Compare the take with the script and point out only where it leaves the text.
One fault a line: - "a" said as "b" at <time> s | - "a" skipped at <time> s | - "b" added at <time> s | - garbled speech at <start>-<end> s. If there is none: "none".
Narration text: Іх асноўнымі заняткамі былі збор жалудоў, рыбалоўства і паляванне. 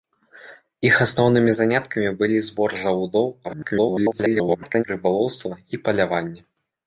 - garbled speech at 3.4-4.8 s